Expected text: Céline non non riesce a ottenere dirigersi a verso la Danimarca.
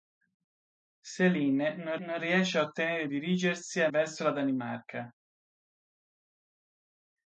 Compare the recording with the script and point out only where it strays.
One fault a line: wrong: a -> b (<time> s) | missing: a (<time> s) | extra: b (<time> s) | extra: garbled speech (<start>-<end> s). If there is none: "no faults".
no faults